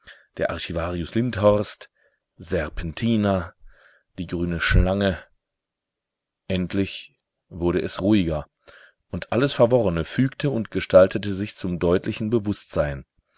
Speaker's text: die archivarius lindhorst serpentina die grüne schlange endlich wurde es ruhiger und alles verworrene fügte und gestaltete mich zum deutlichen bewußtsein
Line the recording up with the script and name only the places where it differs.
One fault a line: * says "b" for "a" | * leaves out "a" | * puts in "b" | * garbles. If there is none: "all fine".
* says "der" for "die"
* says "sich" for "mich"